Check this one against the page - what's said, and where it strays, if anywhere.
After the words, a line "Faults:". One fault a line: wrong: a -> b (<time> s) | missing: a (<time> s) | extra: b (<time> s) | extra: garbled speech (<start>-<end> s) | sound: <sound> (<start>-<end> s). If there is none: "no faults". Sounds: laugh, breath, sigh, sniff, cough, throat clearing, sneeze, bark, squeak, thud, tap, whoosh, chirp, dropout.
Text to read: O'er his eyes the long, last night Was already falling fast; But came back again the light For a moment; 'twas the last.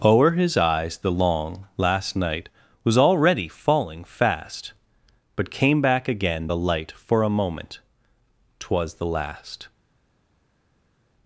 O'er his eyes the long, last night Was already falling fast; But came back again the light For a moment; 'twas the last.
Faults:
no faults